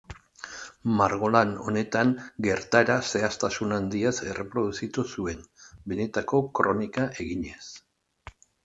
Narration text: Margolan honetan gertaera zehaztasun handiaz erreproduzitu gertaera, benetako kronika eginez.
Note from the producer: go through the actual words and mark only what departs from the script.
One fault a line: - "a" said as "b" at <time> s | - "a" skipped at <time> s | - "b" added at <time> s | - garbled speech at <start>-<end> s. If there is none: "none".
- "gertaera" said as "zuen" at 5.2 s